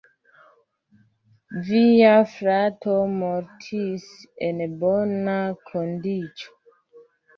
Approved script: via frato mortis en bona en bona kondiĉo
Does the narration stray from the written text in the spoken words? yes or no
yes